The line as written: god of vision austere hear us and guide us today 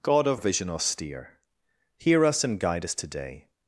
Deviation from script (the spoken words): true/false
false